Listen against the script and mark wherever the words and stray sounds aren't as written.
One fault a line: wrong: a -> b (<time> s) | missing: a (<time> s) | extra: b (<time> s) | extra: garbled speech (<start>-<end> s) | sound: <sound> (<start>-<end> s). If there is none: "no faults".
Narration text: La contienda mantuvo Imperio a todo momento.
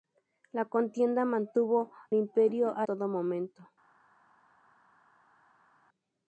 no faults